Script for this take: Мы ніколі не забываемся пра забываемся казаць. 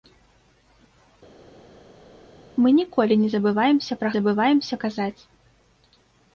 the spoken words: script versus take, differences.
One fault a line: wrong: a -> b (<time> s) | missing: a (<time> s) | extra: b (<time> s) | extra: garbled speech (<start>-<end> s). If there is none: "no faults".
no faults